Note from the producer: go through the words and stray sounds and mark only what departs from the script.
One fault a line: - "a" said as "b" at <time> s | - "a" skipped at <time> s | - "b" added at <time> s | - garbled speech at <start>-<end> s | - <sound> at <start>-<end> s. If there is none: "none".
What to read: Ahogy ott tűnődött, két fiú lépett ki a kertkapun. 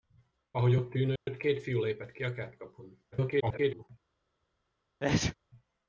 - dropout at 1.2-1.3 s
- garbled speech at 3.1-3.9 s
- sneeze at 5.0-5.4 s